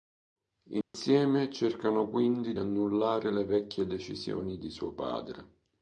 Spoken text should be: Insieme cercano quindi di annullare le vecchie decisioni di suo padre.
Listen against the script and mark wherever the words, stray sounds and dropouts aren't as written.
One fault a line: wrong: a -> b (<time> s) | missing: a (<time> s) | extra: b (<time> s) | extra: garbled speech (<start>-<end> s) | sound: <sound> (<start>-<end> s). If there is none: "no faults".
sound: dropout (0.8-0.9 s)
missing: di (2.5 s)